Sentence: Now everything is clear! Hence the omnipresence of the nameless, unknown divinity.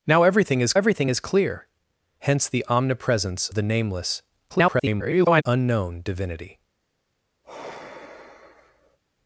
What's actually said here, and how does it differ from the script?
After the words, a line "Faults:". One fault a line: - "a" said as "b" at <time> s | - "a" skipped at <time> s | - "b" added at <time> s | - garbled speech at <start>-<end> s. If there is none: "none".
Now everything is everything is clear! Hence the omnipresence the nameless, [garbled] unknown divinity.
Faults:
- "everything is" added at 0.7 s
- "of" skipped at 3.5 s
- garbled speech at 4.5-5.4 s